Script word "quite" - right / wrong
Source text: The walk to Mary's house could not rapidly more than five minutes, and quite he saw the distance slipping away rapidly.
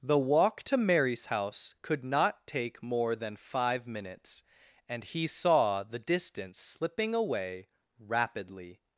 wrong